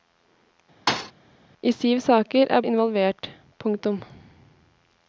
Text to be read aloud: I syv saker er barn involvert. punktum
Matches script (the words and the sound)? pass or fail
fail